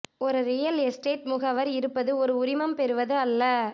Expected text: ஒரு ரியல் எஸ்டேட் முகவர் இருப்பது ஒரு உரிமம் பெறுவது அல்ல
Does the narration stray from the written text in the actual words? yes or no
no